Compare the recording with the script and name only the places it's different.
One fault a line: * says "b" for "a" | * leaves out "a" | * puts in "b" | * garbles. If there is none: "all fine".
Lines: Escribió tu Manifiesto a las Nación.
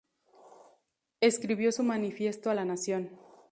* says "su" for "tu"
* says "la" for "las"